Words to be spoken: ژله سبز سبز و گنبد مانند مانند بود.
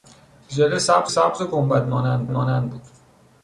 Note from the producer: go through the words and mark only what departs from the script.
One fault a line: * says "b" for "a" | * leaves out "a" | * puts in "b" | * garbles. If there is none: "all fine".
all fine